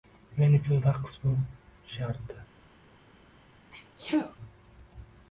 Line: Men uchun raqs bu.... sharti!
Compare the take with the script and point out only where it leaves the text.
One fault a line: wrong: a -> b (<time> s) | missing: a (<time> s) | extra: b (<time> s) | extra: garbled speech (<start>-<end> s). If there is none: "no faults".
no faults